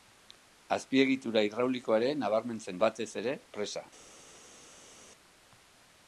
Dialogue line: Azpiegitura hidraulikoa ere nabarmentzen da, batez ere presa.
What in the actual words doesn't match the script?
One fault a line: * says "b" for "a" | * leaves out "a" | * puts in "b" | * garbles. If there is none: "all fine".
* leaves out "da"